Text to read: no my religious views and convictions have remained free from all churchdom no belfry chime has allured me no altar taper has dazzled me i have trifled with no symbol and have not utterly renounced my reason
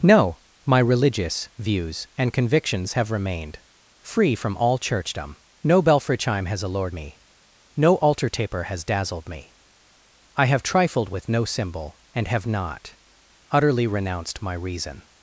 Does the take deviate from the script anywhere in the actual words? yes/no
no